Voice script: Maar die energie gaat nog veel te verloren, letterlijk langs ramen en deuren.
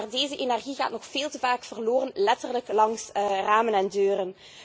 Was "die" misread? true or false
true